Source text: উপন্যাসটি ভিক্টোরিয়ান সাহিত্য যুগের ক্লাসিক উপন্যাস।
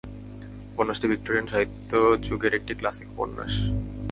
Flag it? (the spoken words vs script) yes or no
yes